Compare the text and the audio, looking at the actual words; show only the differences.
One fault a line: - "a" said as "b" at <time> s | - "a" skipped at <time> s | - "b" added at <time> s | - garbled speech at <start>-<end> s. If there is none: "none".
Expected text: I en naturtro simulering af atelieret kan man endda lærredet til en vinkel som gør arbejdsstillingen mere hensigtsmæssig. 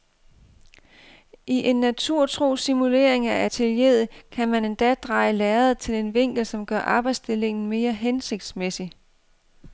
- "dreje" added at 4.9 s